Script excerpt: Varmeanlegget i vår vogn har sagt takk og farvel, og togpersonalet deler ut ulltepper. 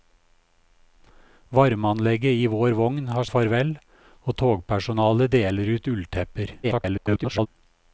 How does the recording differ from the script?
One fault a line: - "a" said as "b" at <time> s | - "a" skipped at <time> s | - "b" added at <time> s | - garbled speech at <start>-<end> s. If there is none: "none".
- "sagt takk" skipped at 3.3 s
- garbled speech at 6.6-7.5 s